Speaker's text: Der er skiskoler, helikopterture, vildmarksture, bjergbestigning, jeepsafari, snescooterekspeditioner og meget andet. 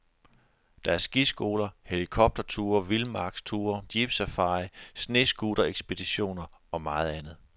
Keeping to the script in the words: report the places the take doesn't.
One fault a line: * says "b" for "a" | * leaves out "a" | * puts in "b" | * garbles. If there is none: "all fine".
* leaves out "bjergbestigning"